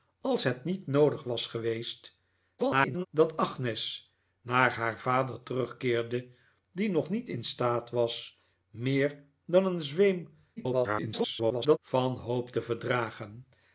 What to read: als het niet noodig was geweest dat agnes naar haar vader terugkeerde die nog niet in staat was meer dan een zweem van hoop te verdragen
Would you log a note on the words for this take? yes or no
yes